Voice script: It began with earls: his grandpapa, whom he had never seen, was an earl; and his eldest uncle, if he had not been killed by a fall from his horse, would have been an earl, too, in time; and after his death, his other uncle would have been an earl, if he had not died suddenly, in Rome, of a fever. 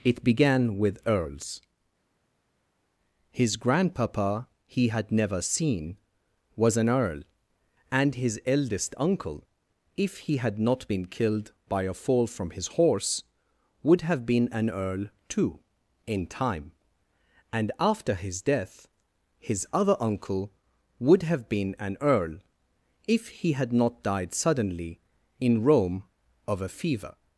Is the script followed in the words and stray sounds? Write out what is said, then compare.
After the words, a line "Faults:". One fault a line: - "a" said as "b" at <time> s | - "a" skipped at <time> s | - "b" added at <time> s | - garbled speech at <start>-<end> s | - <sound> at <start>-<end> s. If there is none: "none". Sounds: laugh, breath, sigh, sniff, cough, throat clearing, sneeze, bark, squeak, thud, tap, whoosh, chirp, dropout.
It began with earls: his grandpapa, he had never seen, was an earl; and his eldest uncle, if he had not been killed by a fall from his horse, would have been an earl, too, in time; and after his death, his other uncle would have been an earl, if he had not died suddenly, in Rome, of a fever.
Faults:
- "whom" skipped at 4.5 s